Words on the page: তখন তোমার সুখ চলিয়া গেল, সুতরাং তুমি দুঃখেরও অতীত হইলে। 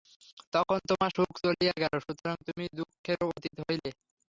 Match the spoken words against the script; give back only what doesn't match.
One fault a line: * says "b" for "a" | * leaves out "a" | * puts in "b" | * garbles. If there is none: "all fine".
all fine